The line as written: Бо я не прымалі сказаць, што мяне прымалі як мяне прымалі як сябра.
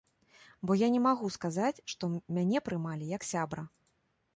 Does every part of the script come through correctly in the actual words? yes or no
no